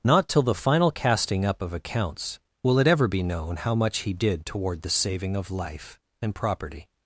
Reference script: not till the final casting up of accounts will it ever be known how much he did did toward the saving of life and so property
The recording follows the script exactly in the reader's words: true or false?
false